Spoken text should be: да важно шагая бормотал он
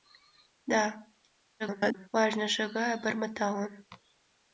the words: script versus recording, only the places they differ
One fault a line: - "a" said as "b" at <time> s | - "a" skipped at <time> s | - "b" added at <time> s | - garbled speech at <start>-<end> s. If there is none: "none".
- garbled speech at 1.6-2.1 s